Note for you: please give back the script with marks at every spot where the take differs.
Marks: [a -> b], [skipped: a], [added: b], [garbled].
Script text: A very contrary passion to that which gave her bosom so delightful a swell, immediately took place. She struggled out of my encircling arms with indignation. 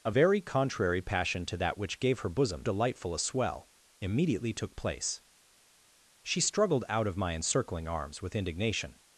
A very contrary passion to that which gave her bosom [skipped: so] delightful a swell, immediately took place. She struggled out of my encircling arms with indignation.